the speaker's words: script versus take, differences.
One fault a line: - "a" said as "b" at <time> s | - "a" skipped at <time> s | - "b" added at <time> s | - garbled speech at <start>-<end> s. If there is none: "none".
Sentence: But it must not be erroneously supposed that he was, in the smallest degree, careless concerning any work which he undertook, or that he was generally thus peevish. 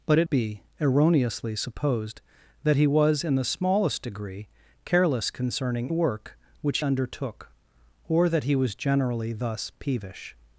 - "must not" skipped at 0.3 s
- "any" skipped at 5.9 s
- "he" skipped at 6.8 s